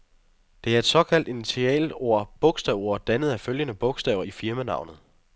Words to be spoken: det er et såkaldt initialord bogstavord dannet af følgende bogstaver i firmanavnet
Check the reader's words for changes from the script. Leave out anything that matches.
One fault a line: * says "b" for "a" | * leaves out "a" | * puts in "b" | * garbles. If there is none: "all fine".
all fine